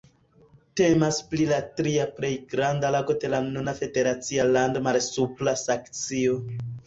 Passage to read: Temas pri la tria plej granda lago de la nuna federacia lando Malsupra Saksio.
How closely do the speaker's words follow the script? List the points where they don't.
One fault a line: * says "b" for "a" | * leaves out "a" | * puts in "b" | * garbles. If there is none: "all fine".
all fine